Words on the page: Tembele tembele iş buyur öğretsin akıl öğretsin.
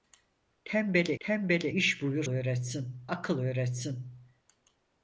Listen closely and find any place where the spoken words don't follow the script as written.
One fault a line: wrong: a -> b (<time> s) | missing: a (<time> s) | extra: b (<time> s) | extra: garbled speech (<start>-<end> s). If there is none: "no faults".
no faults